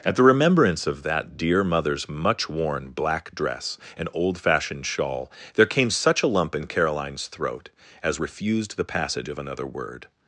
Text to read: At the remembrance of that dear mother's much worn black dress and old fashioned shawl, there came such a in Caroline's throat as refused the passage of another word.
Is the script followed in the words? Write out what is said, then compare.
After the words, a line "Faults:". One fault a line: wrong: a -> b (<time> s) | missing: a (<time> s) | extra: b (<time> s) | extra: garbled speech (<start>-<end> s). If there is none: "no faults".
At the remembrance of that dear mother's much worn black dress and old fashioned shawl, there came such a lump in Caroline's throat as refused the passage of another word.
Faults:
extra: lump (6.3 s)